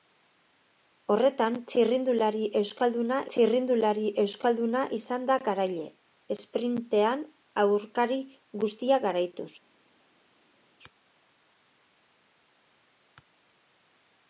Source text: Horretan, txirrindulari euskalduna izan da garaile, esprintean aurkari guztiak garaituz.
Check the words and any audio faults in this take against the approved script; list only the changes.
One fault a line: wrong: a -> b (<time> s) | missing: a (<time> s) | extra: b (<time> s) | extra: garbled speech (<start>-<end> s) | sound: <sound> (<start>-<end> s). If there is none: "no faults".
extra: txirrindulari euskalduna (3.3 s)